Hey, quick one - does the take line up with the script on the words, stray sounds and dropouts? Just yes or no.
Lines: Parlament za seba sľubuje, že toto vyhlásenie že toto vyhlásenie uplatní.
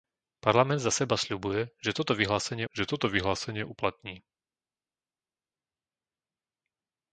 yes